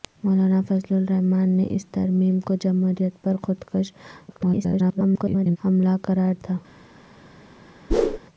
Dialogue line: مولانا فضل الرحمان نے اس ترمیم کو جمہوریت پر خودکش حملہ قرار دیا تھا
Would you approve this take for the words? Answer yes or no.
no